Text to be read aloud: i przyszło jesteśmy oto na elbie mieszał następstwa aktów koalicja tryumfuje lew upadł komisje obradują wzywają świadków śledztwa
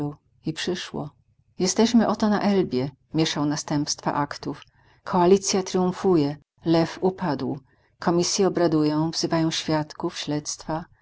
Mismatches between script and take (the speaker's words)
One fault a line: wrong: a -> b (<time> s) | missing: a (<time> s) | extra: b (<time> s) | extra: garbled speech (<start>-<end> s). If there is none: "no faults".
no faults